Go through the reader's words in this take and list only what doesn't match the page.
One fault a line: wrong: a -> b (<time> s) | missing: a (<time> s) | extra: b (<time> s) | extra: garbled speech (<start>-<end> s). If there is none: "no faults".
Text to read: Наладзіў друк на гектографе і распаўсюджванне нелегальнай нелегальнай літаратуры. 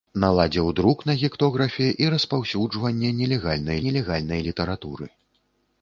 no faults